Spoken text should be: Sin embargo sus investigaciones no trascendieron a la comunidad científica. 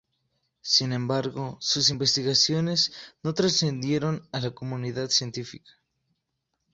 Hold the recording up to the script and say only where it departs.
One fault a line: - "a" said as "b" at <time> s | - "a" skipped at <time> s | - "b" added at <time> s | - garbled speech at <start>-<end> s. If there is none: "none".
none